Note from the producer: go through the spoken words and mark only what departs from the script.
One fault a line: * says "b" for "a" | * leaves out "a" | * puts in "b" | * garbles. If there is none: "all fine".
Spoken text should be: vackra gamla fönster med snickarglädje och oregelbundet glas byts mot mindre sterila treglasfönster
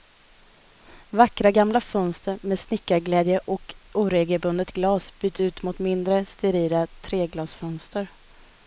* puts in "ut"